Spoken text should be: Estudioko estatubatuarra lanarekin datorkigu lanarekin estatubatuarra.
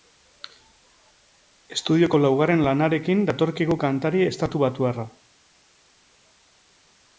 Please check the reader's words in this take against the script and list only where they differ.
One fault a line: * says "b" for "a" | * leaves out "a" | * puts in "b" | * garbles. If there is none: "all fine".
* says "laugarren" for "estatubatuarra"
* says "kantari" for "lanarekin"